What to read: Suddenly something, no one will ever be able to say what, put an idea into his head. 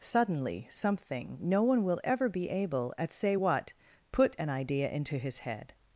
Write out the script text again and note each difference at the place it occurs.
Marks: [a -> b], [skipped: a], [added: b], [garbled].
Suddenly something, no one will ever be able [to -> at] say what, put an idea into his head.